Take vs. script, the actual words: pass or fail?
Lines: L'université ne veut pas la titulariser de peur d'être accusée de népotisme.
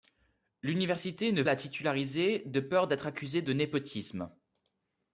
fail